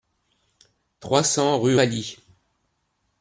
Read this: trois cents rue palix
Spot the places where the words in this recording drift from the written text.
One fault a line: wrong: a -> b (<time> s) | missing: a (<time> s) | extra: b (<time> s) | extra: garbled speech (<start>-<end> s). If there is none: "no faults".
no faults